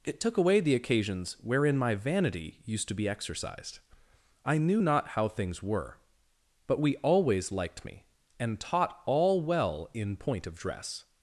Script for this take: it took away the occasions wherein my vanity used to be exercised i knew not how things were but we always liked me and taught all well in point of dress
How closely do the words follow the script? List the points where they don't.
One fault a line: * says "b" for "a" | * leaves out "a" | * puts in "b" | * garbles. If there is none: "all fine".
all fine